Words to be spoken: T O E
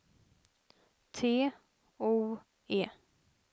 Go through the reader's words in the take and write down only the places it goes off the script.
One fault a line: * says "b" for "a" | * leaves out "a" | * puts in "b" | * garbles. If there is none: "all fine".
all fine